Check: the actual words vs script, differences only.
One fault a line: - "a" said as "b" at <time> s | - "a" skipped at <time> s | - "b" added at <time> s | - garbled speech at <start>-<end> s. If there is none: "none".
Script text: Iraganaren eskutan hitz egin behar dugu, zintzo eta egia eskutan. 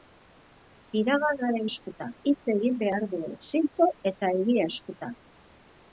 none